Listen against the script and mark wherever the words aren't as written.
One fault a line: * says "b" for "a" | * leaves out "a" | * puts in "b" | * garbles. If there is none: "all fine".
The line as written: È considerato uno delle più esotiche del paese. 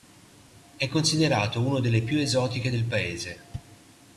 all fine